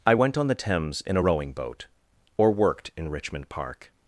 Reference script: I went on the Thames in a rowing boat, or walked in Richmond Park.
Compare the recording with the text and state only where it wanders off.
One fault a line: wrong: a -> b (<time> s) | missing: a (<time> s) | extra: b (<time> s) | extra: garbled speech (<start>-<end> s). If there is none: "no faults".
wrong: walked -> worked (2.5 s)